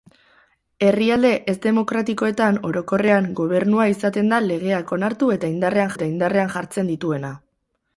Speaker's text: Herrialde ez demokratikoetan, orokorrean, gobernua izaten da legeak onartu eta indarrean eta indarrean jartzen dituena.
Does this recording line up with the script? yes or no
yes